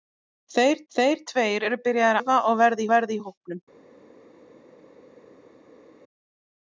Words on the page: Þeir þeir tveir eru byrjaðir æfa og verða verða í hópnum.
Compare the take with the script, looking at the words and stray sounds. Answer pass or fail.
pass